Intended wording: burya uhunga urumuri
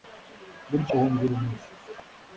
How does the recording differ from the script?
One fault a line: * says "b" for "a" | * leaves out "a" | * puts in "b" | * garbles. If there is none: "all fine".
all fine